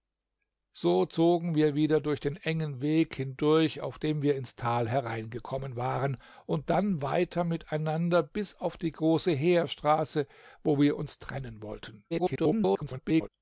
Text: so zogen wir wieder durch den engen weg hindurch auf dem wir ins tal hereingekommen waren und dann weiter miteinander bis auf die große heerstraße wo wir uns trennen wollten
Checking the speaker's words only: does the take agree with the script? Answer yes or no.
no